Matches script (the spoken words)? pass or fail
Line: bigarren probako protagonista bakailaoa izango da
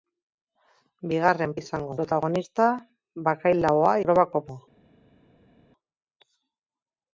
fail